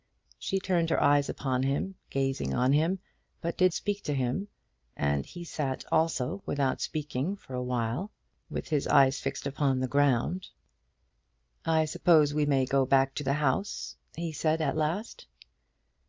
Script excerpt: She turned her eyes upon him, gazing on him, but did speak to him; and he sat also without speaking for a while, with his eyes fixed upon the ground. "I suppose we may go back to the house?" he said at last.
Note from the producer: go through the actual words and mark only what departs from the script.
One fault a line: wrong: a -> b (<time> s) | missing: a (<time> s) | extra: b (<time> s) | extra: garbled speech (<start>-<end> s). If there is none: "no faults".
no faults